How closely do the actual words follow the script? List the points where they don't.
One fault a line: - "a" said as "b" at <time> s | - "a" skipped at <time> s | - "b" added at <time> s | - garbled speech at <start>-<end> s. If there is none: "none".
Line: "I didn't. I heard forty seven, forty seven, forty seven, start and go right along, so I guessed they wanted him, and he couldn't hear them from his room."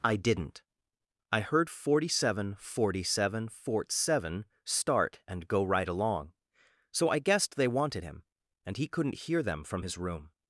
- "forty" said as "fort" at 3.5 s